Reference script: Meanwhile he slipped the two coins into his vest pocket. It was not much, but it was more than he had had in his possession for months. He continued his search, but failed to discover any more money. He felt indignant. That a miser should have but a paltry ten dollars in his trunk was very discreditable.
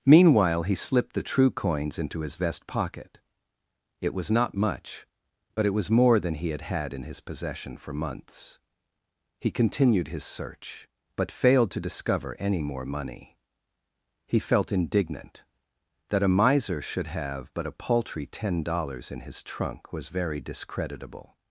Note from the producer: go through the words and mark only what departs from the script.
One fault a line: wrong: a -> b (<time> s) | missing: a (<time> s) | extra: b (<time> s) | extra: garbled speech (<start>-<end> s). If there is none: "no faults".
wrong: two -> true (1.2 s)